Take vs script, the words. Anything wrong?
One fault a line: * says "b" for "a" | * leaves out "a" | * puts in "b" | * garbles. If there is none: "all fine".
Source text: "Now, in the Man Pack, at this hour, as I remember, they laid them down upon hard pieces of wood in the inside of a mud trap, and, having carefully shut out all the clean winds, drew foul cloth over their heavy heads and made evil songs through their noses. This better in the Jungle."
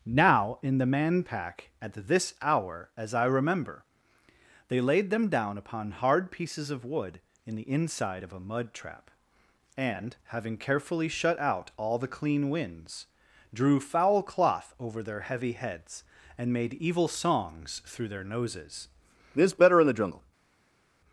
all fine